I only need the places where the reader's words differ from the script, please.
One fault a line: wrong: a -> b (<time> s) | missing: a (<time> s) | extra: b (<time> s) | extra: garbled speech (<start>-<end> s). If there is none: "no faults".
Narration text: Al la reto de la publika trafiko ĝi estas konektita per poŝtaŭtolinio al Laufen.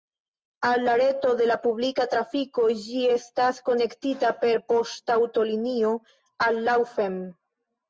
no faults